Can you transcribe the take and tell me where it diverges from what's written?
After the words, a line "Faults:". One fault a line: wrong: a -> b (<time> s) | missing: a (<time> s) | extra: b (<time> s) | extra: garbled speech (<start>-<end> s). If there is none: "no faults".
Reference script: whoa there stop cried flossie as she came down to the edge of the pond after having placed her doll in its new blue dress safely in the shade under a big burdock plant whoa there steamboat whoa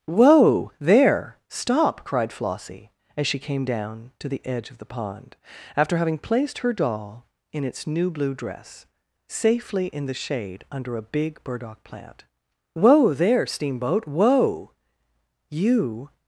whoa there stop cried flossie as she came down to the edge of the pond after having placed her doll in its new blue dress safely in the shade under a big burdock plant whoa there steamboat whoa you
Faults:
extra: you (15.5 s)